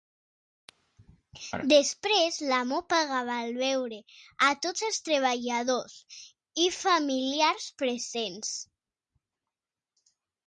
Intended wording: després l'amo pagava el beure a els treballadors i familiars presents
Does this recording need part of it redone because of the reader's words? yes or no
yes